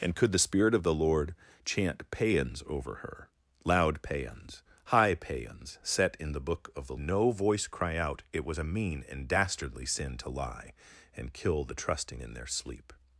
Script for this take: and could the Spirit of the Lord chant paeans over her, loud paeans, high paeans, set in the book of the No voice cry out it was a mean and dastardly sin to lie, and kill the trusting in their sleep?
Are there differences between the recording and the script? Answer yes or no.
no